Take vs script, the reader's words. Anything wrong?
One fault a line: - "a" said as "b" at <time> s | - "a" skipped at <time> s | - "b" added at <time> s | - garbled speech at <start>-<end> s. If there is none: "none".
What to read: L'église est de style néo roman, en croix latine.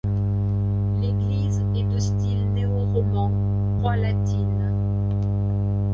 - "en" skipped at 3.3 s